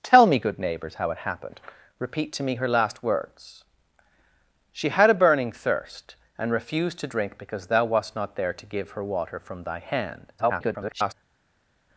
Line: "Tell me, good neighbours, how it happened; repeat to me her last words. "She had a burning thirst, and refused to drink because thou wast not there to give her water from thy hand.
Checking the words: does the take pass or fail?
fail